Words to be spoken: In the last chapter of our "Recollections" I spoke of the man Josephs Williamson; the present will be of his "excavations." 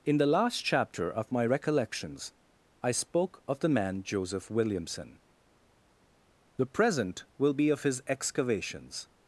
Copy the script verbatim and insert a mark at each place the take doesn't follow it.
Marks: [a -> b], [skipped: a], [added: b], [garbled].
In the last chapter of [our -> my] "Recollections" I spoke of the man [Josephs -> Joseph] Williamson; the present will be of his "excavations."